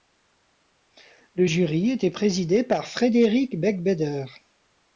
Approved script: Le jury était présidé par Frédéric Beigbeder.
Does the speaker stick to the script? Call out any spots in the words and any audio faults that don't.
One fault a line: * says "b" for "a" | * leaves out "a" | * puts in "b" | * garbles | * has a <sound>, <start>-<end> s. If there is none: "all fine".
all fine